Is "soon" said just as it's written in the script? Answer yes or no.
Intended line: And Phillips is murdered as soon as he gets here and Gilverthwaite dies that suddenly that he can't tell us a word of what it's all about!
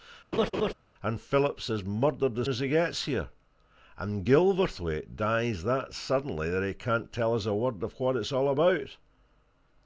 no